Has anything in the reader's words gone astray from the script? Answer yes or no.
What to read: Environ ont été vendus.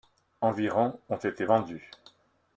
no